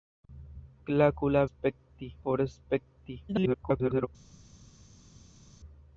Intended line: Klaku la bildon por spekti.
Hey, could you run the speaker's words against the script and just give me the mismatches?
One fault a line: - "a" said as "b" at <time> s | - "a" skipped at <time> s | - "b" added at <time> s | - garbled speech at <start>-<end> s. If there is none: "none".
- "bildon" said as "spekti" at 1.5 s
- garbled speech at 3.3-4.1 s